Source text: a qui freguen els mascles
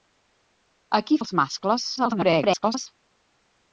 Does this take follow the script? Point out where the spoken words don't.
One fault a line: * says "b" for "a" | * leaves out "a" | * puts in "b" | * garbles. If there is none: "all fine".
* leaves out "freguen"
* garbles